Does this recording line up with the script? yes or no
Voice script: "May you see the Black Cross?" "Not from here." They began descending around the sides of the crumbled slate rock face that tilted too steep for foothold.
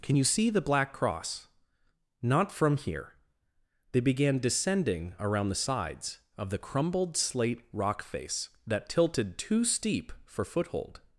no